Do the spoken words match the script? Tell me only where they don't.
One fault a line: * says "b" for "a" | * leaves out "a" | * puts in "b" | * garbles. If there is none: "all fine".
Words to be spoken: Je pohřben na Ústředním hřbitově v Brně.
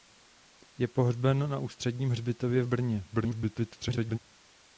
* garbles